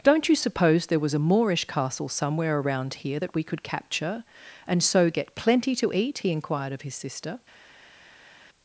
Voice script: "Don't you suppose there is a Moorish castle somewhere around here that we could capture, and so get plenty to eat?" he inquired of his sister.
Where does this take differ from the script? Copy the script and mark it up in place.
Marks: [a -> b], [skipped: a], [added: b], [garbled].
"Don't you suppose there [is -> was] a Moorish castle somewhere around here that we could capture, and so get plenty to eat?" he inquired of his sister.